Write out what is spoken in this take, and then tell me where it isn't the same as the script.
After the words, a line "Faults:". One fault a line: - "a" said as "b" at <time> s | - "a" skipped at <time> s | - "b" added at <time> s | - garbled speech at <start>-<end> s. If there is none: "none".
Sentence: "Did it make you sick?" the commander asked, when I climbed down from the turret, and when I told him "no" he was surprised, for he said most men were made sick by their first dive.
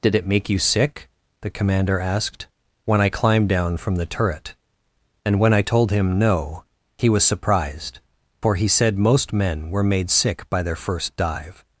"Did it make you sick?" the commander asked, when I climbed down from the turret, and when I told him "no" he was surprised, for he said most men were made sick by their first dive.
Faults:
none